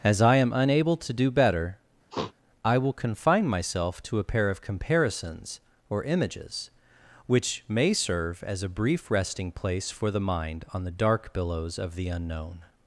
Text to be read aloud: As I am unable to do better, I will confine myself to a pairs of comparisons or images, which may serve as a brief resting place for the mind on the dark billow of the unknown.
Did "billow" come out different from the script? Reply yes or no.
yes